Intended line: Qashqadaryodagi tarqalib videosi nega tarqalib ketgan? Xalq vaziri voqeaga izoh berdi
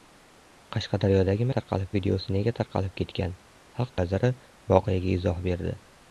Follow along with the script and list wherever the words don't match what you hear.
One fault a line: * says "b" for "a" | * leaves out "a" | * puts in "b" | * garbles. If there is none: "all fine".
all fine